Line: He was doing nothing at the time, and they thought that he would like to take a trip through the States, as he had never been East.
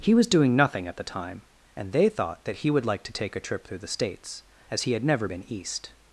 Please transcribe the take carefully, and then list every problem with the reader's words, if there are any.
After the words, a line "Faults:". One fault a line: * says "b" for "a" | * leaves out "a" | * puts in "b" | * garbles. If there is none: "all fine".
He was doing nothing at the time, and they thought that he would like to take a trip through the States, as he had never been East.
Faults:
all fine